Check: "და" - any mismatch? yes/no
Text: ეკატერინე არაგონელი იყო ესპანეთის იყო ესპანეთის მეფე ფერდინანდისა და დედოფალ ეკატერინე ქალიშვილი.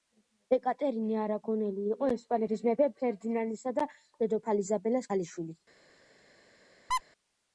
no